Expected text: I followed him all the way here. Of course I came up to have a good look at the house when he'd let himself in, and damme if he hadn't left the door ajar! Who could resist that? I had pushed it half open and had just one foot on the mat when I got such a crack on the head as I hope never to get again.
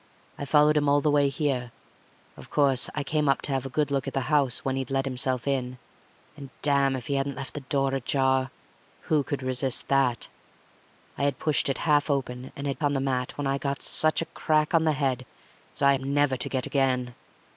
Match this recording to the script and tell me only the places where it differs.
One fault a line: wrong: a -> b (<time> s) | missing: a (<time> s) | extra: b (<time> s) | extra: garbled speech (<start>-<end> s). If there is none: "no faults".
missing: just one foot (12.8 s)
missing: hope (15.9 s)